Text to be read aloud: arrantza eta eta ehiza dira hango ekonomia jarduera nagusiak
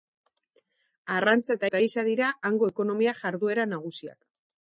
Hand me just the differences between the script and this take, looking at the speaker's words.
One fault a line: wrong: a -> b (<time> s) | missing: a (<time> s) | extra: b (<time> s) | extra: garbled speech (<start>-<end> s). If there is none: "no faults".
no faults